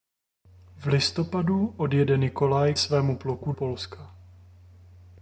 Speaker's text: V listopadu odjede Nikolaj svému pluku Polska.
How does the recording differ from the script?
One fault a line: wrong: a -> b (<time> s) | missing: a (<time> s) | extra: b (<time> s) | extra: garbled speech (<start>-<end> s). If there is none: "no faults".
no faults